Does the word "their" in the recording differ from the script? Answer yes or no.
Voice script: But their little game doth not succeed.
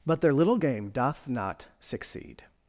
no